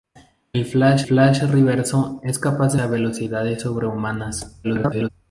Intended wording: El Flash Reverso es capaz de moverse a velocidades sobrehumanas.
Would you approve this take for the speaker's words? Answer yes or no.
no